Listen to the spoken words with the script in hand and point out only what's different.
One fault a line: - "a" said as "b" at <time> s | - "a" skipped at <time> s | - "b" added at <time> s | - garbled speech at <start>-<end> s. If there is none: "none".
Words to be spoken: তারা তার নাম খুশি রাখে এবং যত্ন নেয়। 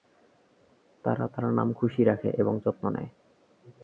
none